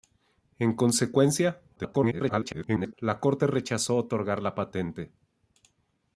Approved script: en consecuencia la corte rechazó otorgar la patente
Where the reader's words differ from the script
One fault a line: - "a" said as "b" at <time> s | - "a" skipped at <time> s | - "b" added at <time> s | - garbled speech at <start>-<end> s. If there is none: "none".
- garbled speech at 1.8-2.9 s